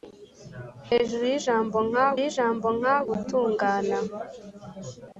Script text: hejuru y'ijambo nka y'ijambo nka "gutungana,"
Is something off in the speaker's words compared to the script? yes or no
no